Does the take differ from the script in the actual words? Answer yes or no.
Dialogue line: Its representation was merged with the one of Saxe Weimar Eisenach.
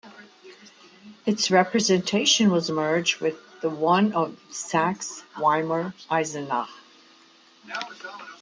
no